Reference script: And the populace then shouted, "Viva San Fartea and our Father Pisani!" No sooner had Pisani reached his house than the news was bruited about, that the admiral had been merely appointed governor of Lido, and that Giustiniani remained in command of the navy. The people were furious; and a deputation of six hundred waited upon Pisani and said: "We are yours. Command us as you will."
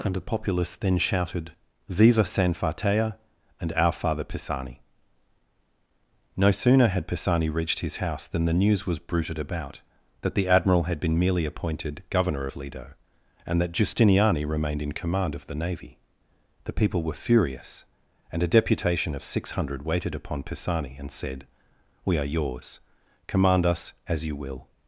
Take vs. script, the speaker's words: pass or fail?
pass